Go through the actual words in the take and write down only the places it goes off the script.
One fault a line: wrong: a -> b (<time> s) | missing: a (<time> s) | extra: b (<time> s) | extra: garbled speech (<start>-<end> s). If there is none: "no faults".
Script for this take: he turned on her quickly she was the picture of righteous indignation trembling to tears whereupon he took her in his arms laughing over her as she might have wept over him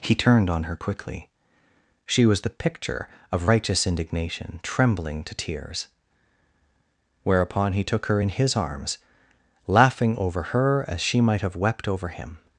no faults